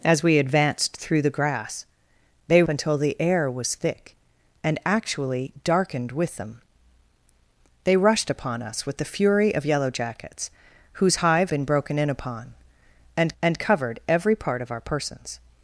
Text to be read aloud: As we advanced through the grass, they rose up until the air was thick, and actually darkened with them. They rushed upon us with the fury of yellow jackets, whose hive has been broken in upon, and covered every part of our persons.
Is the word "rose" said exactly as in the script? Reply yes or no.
no